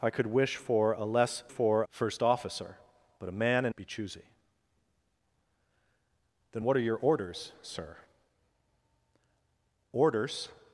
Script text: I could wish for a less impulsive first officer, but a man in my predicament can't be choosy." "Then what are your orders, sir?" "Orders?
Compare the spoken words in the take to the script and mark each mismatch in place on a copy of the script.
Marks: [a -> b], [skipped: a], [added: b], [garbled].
I could wish for a less [impulsive -> for] first officer, but a man in [skipped: my predicament can't] be choosy." "Then what are your orders, sir?" "Orders?